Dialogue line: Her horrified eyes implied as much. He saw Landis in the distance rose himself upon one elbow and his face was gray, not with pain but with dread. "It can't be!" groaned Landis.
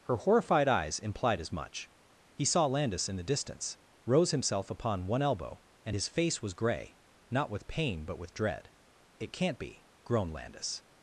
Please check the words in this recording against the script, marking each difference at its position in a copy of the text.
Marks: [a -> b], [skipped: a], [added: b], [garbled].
Her horrified eyes implied as much. He saw Landis in the distance rose himself upon one elbow and his face was gray, not with pain but with dread. "It can't be!" groaned Landis.